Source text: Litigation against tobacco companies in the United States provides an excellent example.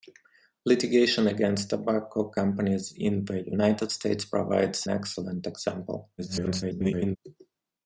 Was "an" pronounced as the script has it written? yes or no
no